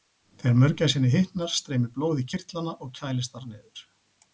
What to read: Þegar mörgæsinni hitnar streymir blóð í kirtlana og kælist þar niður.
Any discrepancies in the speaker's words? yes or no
no